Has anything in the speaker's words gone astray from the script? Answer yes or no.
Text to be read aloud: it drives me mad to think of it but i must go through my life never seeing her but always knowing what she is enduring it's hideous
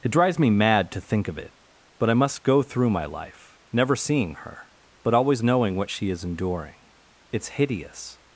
no